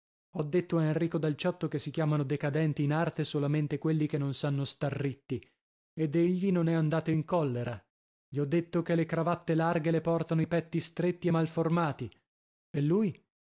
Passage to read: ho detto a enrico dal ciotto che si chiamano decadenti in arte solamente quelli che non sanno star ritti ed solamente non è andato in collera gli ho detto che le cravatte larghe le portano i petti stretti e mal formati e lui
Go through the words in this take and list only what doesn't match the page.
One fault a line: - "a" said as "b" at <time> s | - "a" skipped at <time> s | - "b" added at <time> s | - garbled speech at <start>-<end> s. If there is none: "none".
- "solamente" said as "egli" at 6.2 s